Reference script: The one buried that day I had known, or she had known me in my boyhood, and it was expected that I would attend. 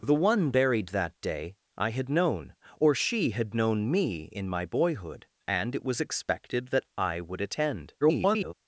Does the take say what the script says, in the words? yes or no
no